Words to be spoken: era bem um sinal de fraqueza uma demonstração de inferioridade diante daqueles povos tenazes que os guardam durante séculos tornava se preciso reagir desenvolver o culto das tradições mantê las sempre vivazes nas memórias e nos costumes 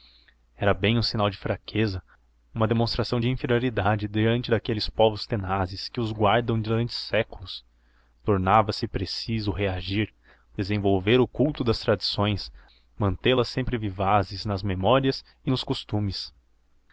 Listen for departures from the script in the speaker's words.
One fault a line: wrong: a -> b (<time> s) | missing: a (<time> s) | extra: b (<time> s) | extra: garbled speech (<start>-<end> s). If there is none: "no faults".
no faults